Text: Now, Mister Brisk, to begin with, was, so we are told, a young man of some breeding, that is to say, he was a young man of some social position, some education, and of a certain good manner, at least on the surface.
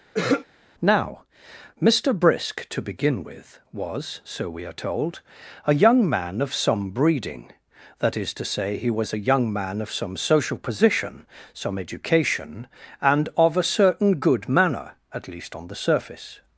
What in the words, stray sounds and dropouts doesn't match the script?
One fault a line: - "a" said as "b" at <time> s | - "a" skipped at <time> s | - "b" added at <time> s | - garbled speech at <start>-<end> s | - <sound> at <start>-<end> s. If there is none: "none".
- throat clearing at 0.1-0.5 s